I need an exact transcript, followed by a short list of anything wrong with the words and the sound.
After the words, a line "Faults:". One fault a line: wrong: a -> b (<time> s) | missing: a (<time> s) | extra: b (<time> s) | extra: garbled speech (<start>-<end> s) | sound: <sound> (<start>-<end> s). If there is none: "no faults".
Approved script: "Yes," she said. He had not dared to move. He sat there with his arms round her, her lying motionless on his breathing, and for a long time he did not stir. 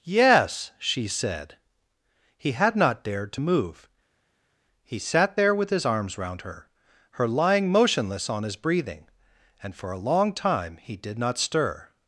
"Yes," she said. He had not dared to move. He sat there with his arms round her, her lying motionless on his breathing, and for a long time he did not stir.
Faults:
no faults